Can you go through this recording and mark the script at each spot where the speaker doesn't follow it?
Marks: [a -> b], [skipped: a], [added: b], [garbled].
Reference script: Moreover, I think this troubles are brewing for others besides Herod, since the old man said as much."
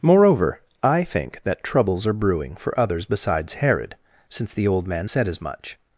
Moreover, I think [this -> that] troubles are brewing for others besides Herod, since the old man said as much."